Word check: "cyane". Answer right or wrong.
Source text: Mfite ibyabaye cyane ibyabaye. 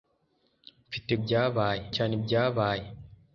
right